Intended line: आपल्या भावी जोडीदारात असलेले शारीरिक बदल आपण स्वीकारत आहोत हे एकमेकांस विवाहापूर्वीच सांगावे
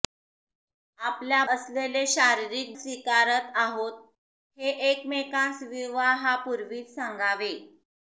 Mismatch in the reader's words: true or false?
true